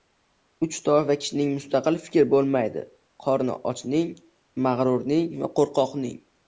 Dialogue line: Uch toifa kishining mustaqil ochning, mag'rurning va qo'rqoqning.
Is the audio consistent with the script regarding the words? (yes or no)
no